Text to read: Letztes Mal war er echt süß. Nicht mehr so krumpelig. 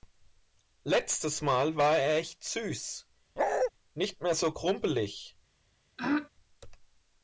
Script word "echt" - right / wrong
right